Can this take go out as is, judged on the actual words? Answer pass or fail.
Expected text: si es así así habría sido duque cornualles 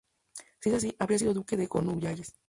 fail